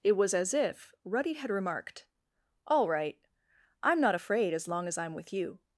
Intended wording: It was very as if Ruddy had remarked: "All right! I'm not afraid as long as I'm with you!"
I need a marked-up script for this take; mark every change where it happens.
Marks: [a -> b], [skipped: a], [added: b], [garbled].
It was [skipped: very] as if Ruddy had remarked: "All right! I'm not afraid as long as I'm with you!"